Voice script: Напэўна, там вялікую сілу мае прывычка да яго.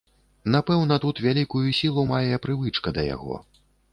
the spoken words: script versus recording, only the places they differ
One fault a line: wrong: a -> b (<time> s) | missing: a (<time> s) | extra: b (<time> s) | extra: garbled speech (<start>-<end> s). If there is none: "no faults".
wrong: там -> тут (1.0 s)